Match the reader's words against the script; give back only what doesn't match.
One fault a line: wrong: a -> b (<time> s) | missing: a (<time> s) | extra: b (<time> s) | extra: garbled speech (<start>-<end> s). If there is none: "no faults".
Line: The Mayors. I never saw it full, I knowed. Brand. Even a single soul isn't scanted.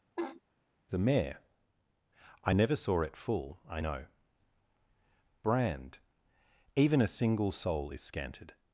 wrong: Mayors -> Mayor (1.0 s)
wrong: knowed -> know (3.8 s)
wrong: isn't -> is (7.9 s)